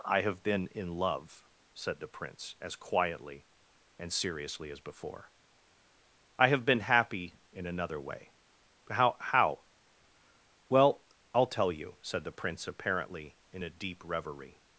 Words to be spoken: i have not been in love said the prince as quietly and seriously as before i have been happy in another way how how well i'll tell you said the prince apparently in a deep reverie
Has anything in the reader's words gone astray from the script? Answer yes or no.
yes